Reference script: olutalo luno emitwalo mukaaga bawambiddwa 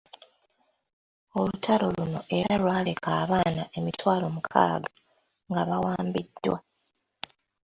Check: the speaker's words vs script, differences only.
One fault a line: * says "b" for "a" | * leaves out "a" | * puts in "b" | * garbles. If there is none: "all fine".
* puts in "era lwaleka abaana"
* puts in "nga"